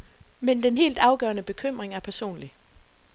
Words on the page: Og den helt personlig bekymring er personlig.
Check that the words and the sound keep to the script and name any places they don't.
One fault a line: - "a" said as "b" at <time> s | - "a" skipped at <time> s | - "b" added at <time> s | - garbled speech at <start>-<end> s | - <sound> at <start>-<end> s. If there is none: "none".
- "Og" said as "Men" at 0.4 s
- "personlig" said as "afgørende" at 1.0 s